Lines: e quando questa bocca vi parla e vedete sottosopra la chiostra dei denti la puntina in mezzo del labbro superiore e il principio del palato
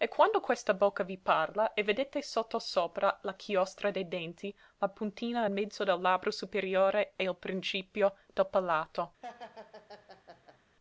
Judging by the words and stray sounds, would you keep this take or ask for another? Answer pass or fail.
fail